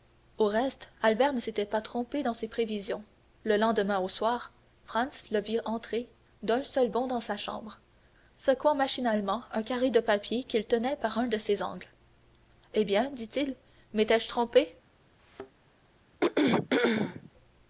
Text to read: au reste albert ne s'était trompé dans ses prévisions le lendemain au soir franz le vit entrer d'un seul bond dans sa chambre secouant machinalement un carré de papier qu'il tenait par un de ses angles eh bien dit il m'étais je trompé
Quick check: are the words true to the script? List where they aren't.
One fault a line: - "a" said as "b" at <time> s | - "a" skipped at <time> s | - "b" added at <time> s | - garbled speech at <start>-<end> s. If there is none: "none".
- "pas" added at 1.6 s